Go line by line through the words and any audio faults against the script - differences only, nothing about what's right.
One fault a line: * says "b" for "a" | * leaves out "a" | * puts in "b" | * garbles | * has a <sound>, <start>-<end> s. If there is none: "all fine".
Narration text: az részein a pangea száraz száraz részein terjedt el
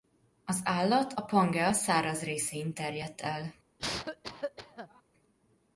* says "állat" for "részein"
* leaves out "száraz"
* has a cough, 3.8-5.0 s